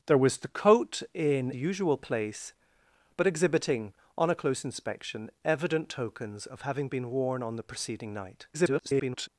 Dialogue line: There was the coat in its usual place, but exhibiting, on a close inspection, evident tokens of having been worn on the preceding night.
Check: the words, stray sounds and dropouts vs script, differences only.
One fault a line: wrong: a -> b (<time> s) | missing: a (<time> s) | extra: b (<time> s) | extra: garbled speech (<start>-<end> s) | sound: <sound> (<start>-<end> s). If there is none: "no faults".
missing: its (1.5 s)
extra: garbled speech (8.5-9.3 s)